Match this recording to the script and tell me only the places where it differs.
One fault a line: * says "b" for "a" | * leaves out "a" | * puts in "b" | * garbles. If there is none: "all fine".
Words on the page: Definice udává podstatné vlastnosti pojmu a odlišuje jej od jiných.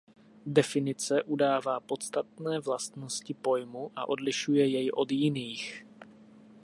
all fine